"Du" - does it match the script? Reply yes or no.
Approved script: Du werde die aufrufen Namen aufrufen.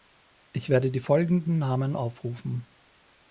no